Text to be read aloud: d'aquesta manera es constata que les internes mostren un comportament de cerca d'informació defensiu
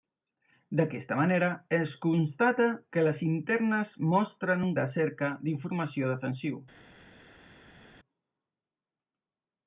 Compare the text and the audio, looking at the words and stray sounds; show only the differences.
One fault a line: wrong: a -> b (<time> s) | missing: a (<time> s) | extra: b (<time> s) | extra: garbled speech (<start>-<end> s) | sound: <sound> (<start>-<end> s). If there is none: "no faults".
missing: comportament (4.7 s)